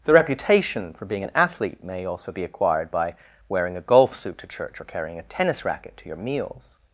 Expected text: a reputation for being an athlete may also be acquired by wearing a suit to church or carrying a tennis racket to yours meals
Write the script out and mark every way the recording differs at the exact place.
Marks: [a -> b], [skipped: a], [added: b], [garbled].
[a -> the] reputation for being an athlete may also be acquired by wearing a [added: golf] suit to church or carrying a tennis racket to [yours -> your] meals